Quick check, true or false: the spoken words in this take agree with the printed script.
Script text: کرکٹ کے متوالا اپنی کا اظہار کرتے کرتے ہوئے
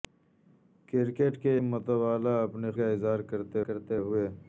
true